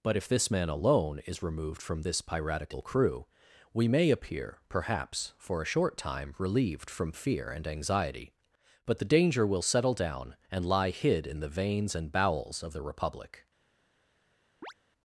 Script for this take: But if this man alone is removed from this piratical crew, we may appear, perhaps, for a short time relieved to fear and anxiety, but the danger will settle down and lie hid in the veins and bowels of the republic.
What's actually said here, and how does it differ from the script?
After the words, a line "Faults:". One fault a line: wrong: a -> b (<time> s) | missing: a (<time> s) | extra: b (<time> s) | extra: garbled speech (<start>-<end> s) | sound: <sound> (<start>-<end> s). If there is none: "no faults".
But if this man alone is removed from this piratical crew, we may appear, perhaps, for a short time relieved from fear and anxiety, but the danger will settle down and lie hid in the veins and bowels of the republic.
Faults:
wrong: to -> from (6.9 s)
sound: chirp (14.6-14.7 s)